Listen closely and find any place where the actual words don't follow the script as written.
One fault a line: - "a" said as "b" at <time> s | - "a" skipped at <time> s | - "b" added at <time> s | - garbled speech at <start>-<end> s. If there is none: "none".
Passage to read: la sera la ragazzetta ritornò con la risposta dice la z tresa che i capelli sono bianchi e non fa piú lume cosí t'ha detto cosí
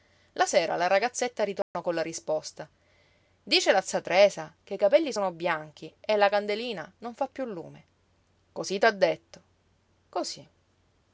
- "la candelina" added at 6.1 s